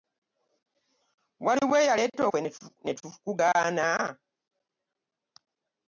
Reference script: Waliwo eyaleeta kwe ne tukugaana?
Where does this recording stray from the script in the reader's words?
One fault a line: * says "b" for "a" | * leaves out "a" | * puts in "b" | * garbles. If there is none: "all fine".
all fine